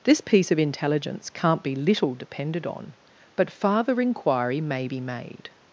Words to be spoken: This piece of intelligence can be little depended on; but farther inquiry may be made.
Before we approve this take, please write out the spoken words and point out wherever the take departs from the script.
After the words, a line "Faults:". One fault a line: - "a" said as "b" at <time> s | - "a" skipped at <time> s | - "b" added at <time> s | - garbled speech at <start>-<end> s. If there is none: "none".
This piece of intelligence can't be little depended on; but farther inquiry may be made.
Faults:
- "can" said as "can't" at 1.3 s